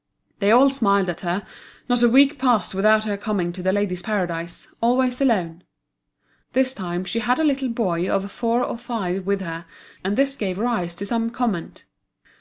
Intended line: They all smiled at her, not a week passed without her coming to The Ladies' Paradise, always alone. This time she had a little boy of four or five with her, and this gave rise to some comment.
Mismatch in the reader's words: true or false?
false